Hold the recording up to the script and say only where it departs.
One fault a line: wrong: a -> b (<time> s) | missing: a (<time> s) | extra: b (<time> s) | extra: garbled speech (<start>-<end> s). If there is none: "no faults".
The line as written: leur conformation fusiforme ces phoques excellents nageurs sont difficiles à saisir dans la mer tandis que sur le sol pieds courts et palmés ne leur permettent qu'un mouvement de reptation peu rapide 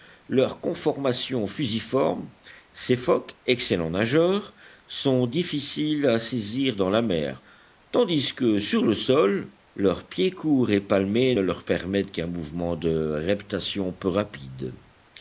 extra: leurs (9.8 s)